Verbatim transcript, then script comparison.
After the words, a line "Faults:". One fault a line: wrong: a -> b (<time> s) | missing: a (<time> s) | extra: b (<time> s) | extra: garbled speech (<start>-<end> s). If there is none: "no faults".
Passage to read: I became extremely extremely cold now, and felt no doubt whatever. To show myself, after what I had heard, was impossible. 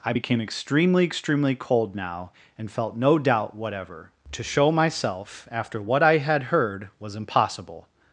I became extremely extremely cold now, and felt no doubt whatever. To show myself, after what I had heard, was impossible.
Faults:
no faults